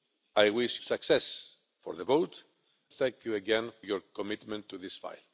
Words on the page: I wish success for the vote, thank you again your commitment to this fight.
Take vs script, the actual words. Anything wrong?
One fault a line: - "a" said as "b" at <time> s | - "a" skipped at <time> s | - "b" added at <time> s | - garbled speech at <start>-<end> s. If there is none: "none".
none